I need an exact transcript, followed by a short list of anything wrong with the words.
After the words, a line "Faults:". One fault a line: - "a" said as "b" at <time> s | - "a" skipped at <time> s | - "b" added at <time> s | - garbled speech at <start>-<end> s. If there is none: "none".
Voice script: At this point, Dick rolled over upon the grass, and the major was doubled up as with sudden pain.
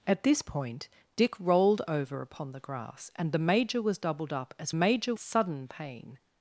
At this point, Dick rolled over upon the grass, and the major was doubled up as major sudden pain.
Faults:
- "with" said as "major" at 4.7 s